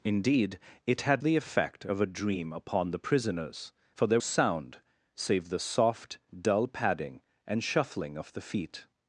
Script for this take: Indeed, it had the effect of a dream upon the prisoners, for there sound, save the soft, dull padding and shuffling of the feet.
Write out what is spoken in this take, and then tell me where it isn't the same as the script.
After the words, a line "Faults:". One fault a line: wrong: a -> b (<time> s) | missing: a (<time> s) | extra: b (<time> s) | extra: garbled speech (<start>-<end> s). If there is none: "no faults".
Indeed, it had the effect of a dream upon the prisoners, for there sound, save the soft, dull padding and shuffling of the feet.
Faults:
no faults